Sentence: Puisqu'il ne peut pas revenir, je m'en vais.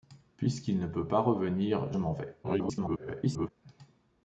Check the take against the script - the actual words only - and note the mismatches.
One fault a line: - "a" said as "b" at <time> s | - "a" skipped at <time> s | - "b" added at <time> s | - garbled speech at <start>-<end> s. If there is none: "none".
- "je" skipped at 1.9 s
- garbled speech at 2.4-3.5 s